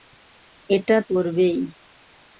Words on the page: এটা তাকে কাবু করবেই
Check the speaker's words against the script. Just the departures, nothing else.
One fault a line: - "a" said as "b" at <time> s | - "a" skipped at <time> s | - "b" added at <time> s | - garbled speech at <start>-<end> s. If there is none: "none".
- "তাকে কাবু" skipped at 1.0 s